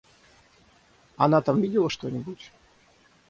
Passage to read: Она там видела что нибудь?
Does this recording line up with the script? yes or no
yes